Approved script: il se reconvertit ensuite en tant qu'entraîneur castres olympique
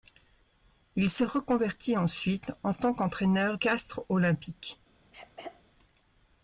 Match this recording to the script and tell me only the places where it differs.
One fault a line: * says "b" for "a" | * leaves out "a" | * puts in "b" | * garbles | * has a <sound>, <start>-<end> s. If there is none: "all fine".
* has a throat clearing, 5.1-5.6 s